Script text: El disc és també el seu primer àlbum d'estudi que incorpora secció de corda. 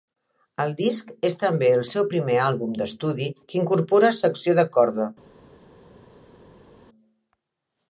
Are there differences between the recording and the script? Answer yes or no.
no